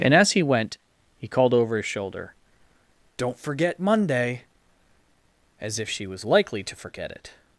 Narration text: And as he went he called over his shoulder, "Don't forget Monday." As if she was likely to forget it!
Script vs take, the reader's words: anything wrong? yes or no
no